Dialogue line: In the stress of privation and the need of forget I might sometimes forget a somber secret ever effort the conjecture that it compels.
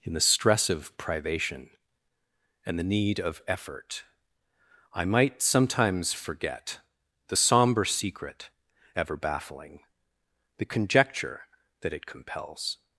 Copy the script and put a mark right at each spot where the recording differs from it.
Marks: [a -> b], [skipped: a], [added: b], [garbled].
In the stress of privation and the need of [forget -> effort] I might sometimes forget [a -> the] somber secret ever [effort -> baffling] the conjecture that it compels.